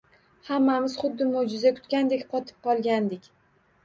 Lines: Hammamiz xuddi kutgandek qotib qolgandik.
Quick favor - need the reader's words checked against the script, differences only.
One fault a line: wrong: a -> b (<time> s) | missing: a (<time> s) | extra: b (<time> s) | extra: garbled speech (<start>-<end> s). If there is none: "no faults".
extra: mo‘jiza (1.3 s)